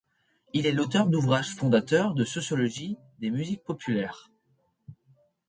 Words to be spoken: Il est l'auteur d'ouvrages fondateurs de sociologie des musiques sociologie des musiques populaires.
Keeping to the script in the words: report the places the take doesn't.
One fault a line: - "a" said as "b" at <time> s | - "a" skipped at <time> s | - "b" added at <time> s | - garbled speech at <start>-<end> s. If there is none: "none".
- "sociologie des musiques" skipped at 3.7 s